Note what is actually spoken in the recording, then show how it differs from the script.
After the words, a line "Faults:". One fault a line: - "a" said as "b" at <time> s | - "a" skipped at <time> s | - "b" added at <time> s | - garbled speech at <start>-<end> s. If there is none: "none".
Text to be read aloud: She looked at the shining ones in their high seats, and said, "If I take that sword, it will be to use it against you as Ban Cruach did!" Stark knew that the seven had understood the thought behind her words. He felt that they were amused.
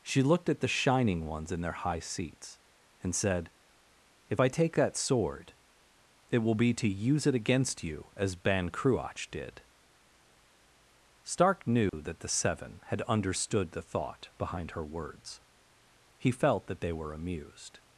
She looked at the shining ones in their high seats, and said, "If I take that sword, it will be to use it against you as Ban Cruach did!" Stark knew that the seven had understood the thought behind her words. He felt that they were amused.
Faults:
none